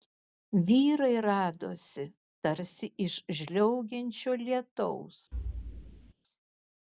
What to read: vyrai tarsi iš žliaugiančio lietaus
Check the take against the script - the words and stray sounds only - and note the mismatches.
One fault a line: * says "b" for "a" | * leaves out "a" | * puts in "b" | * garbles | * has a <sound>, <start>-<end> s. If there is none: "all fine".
* puts in "radosi"
* has a thud, 5.3-6.1 s